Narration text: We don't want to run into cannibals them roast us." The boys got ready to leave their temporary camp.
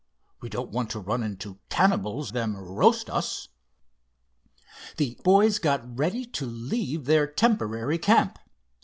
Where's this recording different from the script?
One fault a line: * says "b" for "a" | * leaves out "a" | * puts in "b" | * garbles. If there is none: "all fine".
all fine